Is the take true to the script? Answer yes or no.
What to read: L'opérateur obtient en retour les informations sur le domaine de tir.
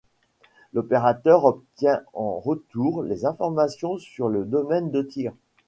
yes